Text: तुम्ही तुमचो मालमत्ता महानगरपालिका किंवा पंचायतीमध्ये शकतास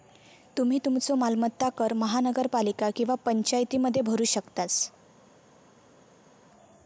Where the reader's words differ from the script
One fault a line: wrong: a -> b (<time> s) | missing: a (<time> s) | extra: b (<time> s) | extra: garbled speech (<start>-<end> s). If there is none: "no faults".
extra: कर (1.8 s)
extra: भरू (4.0 s)